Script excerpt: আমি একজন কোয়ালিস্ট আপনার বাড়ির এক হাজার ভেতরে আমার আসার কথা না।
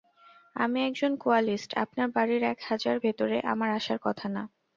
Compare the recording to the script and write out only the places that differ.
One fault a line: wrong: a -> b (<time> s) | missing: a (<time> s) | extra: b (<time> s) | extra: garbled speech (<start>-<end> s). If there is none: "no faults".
no faults